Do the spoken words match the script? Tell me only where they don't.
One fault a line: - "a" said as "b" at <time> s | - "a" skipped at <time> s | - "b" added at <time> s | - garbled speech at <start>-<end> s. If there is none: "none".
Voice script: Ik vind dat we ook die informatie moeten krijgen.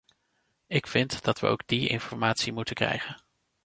none